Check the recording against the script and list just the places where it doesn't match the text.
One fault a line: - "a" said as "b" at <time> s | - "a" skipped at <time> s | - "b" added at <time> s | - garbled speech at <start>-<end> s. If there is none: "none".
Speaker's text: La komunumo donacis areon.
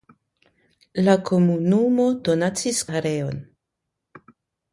none